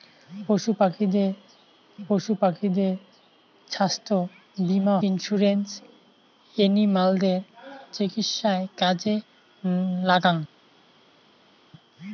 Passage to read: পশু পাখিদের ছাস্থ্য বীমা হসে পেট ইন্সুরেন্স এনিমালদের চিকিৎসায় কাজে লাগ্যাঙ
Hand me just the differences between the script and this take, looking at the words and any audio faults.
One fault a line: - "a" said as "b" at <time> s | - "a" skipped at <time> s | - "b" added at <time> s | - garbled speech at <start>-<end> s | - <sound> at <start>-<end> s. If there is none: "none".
- "পশু পাখিদের" added at 2.1 s
- "হসে পেট" skipped at 5.0 s